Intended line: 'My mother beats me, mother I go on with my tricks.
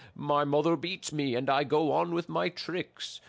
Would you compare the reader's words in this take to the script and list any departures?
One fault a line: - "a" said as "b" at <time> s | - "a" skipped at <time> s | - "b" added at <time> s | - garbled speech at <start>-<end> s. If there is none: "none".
- "mother" said as "and" at 1.3 s